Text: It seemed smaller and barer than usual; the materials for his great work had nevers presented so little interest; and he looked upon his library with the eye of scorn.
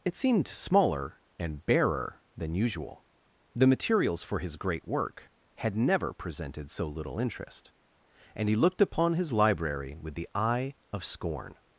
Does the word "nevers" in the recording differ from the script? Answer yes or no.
yes